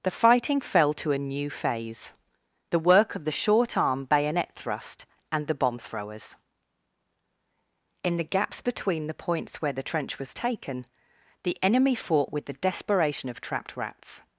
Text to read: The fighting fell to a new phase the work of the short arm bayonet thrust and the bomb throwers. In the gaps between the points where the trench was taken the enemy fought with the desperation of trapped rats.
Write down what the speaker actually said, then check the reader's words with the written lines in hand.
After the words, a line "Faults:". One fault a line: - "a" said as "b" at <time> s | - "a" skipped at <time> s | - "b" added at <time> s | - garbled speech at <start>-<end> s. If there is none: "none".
The fighting fell to a new phase the work of the short arm bayonet thrust and the bomb throwers. In the gaps between the points where the trench was taken the enemy fought with the desperation of trapped rats.
Faults:
none